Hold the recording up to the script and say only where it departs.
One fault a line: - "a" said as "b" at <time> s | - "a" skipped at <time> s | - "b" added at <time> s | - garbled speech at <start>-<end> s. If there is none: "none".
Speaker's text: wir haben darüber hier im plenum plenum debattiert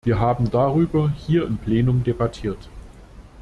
- "plenum" skipped at 2.0 s